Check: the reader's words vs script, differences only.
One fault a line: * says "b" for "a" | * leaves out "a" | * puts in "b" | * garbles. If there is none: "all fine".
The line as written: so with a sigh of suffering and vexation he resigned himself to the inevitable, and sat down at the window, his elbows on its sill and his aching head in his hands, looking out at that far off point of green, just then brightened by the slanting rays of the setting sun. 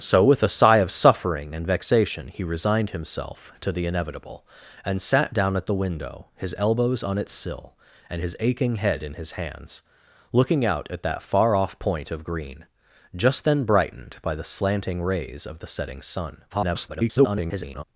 * garbles